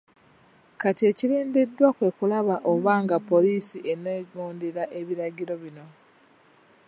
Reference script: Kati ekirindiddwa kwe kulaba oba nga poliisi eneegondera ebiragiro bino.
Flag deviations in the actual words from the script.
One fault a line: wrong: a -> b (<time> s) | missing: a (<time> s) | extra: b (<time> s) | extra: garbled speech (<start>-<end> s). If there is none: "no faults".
no faults